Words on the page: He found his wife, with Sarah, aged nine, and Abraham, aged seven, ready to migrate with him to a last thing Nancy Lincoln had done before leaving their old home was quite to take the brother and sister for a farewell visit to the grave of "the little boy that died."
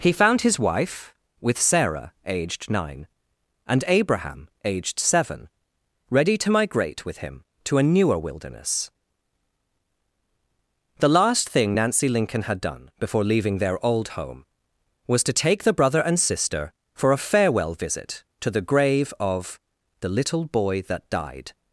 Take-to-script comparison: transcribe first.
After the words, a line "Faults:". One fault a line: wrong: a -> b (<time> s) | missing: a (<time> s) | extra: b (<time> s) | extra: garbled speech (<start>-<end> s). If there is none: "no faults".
He found his wife, with Sarah, aged nine, and Abraham, aged seven, ready to migrate with him to a newer wilderness. The last thing Nancy Lincoln had done before leaving their old home was to take the brother and sister for a farewell visit to the grave of "the little boy that died."
Faults:
extra: newer wilderness The (7.8 s)
missing: quite (15.2 s)